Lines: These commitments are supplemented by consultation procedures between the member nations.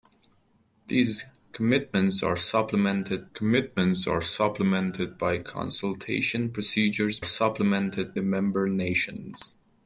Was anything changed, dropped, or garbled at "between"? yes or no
yes